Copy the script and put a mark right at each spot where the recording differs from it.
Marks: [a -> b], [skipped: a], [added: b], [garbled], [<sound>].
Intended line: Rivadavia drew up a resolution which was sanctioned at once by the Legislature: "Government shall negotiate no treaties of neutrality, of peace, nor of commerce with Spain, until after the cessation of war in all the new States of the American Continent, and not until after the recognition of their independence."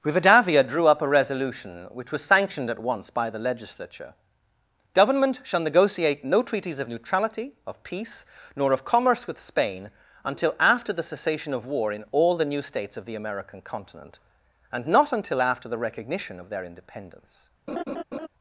Rivadavia drew up a resolution which was sanctioned at once by the Legislature: "Government shall negotiate no treaties of neutrality, of peace, nor of commerce with Spain, until after the cessation of war in all the new States of the American Continent, and not until after the recognition of their independence." [laugh]